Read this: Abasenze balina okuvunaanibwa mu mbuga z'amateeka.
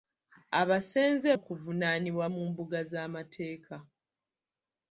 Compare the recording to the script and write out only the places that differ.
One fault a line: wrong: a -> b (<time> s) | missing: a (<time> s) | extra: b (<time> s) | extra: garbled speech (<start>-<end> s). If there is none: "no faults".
missing: balina (1.3 s)